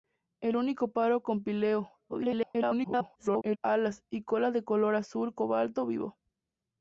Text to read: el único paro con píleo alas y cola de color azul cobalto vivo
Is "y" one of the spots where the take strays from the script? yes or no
no